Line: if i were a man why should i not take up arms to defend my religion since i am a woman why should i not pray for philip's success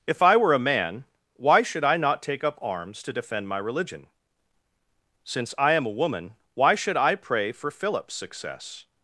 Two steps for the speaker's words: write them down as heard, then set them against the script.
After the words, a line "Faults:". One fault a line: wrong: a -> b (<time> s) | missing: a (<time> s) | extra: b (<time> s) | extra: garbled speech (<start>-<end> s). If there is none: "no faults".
if i were a man why should i not take up arms to defend my religion since i am a woman why should i pray for philip's success
Faults:
missing: not (7.2 s)